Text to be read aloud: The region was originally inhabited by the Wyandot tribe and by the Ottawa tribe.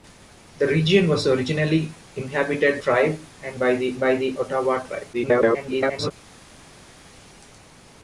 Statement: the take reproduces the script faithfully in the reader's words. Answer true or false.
false